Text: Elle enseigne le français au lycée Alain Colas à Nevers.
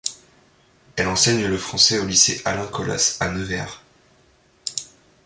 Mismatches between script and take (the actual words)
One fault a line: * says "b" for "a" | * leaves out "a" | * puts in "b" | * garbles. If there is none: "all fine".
all fine